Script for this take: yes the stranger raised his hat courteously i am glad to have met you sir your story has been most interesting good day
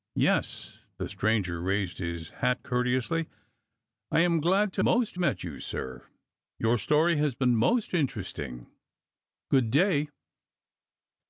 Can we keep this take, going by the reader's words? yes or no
no